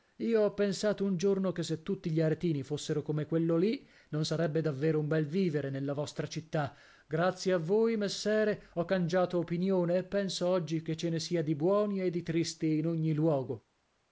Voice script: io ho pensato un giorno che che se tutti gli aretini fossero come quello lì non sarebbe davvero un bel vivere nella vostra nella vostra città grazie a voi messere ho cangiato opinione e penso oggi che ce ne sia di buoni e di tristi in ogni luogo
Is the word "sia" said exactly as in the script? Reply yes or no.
yes